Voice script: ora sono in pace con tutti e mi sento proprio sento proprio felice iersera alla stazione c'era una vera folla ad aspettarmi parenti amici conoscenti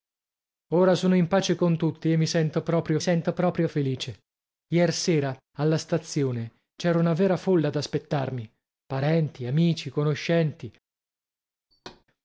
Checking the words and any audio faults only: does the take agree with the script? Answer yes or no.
no